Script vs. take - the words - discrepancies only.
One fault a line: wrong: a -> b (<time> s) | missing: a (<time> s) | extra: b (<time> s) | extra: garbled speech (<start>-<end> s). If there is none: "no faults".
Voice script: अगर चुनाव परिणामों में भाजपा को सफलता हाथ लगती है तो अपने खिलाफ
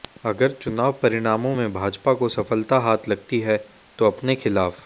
no faults